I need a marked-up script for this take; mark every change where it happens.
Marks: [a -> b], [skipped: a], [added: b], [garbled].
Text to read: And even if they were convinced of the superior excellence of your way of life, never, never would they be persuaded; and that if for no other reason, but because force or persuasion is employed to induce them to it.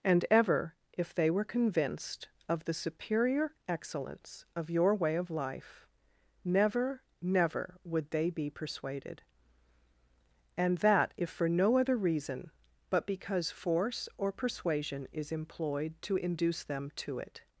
And [even -> ever] if they were convinced of the superior excellence of your way of life, never, never would they be persuaded; and that if for no other reason, but because force or persuasion is employed to induce them to it.